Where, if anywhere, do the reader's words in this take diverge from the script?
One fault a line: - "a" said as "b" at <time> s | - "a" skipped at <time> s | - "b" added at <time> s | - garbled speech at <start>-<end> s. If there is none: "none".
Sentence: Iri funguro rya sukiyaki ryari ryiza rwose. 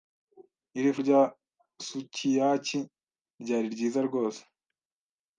- "funguro" skipped at 0.9 s